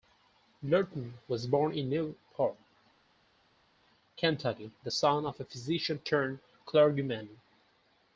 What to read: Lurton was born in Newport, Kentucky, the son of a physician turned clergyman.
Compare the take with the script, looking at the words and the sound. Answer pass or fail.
pass